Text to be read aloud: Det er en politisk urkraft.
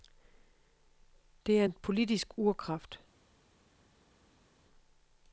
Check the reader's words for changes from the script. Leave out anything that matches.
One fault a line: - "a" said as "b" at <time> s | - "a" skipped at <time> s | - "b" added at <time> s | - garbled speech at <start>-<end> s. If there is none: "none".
none